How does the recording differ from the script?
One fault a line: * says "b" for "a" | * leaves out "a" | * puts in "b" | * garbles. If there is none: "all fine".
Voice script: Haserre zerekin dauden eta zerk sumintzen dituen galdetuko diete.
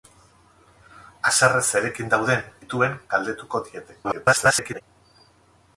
* leaves out "eta zerk sumintzen"
* garbles